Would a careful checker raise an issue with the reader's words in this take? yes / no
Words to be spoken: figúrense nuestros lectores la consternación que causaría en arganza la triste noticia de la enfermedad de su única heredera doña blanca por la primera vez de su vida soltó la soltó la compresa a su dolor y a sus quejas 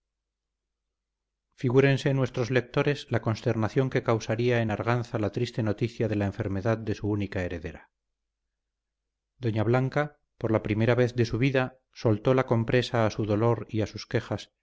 yes